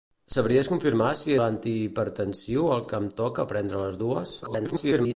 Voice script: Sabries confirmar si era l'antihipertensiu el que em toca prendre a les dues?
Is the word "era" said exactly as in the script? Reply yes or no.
no